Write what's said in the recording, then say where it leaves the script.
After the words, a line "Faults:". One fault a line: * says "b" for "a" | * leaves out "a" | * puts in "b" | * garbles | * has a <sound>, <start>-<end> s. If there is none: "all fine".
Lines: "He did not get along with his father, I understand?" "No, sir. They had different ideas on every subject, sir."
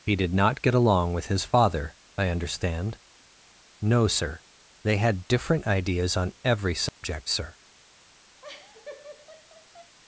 "He did not get along with his father, I understand?" "No, sir. They had different ideas on every subject, sir."
Faults:
* has a dropout, 6.9-7.0 s
* has a laugh, 8.4-10.0 s